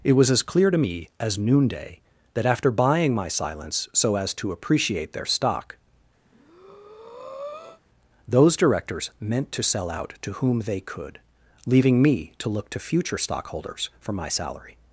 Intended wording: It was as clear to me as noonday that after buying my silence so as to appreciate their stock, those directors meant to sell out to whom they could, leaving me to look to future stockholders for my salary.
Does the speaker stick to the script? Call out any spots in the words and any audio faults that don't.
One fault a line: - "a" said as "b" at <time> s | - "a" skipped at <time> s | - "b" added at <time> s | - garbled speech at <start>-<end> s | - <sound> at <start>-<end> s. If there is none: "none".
- breath at 6.3-7.8 s